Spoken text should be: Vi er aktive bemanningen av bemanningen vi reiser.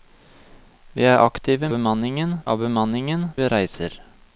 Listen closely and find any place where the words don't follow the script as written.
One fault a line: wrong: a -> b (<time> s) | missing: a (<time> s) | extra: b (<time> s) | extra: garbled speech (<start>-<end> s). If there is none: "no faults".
no faults